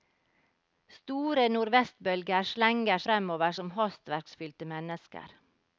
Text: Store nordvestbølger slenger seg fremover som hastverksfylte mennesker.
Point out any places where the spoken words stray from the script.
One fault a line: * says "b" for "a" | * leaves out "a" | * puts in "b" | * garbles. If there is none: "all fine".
* leaves out "seg"